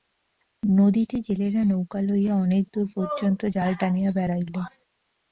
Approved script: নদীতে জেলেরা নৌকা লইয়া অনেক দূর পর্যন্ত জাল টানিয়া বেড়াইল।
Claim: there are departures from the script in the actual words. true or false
false